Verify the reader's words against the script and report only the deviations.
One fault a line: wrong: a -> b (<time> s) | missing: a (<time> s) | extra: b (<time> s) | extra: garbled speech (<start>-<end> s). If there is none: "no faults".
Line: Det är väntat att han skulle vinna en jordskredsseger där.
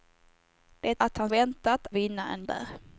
missing: är väntat (1.0 s)
wrong: skulle -> väntat (1.3 s)
missing: jordskredsseger (2.4 s)